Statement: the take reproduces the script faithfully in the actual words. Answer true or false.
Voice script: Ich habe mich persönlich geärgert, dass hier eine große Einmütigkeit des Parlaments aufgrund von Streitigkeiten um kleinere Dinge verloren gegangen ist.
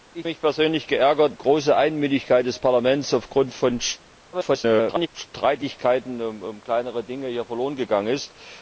false